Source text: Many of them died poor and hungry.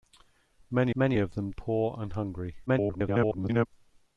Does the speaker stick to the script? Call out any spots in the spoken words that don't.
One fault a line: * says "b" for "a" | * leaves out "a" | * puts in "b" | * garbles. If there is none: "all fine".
* puts in "many"
* leaves out "died"
* garbles